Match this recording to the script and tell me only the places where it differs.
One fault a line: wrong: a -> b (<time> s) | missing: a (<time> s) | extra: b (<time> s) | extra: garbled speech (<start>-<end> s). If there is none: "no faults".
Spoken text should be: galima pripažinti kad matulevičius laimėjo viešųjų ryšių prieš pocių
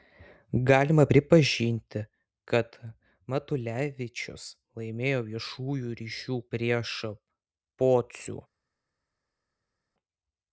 no faults